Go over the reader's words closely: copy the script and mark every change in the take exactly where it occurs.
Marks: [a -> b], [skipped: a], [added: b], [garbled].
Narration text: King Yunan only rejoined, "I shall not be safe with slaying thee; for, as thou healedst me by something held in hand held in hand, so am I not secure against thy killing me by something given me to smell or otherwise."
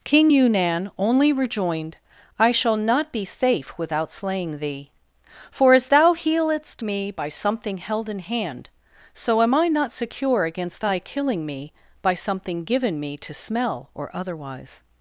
King Yunan only rejoined, "I shall not be safe [with -> without] slaying thee; for, as thou healedst me by something held in hand [skipped: held in hand,] so am I not secure against thy killing me by something given me to smell or otherwise."